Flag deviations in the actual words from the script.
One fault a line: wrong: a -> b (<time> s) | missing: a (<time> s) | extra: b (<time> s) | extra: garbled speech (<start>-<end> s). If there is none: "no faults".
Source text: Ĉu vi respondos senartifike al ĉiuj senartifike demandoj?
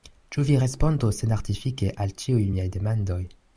wrong: senartifike -> miaj (2.5 s)